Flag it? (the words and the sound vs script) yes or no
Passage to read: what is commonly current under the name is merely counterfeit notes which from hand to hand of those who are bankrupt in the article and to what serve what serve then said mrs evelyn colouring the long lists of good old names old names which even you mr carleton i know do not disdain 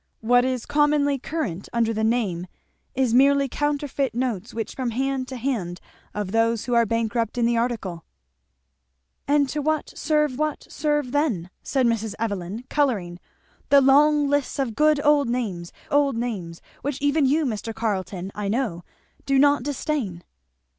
no